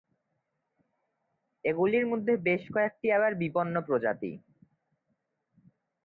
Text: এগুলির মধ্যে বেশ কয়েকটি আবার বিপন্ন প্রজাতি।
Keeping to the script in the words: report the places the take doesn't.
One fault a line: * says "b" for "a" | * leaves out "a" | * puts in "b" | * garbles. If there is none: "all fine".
all fine